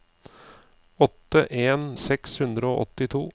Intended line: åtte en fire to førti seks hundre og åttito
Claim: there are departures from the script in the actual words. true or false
true